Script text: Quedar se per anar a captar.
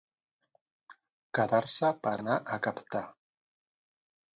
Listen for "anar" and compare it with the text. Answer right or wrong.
right